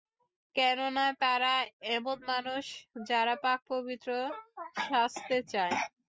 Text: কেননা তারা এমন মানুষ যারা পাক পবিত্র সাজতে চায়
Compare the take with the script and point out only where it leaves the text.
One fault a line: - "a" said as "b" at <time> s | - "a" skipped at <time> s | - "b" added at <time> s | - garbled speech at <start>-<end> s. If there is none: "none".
none